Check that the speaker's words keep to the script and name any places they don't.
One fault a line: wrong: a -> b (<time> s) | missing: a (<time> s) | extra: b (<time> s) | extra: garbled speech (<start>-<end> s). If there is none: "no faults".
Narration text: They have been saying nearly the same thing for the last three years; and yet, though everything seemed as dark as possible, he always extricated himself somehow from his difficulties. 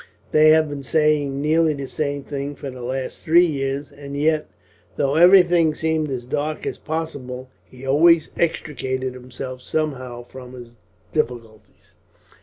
no faults